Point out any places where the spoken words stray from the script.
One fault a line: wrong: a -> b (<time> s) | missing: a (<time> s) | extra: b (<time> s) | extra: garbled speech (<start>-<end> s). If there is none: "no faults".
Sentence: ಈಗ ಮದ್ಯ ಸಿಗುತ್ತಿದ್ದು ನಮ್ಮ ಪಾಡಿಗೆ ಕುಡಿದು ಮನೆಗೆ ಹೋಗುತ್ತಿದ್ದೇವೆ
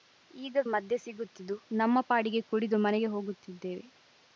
no faults